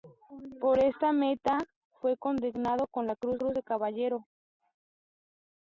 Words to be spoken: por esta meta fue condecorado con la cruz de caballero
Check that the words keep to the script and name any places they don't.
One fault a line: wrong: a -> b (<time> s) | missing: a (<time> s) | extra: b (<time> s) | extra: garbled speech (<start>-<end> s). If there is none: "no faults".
extra: cruz (3.3 s)